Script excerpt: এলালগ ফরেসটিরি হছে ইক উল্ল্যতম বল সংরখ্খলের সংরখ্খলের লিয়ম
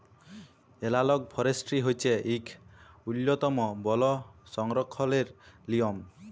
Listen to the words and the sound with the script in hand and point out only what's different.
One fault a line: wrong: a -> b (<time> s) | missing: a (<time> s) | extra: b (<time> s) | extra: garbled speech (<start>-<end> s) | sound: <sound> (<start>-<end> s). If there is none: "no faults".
missing: সংরখ্খলের (5.3 s)